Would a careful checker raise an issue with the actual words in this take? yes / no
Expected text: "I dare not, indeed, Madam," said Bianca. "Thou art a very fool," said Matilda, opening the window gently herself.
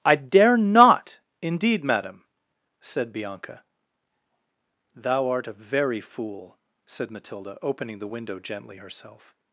no